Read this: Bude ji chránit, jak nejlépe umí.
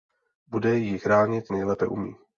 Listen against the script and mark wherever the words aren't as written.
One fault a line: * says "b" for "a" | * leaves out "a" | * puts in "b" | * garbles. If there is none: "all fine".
* leaves out "jak"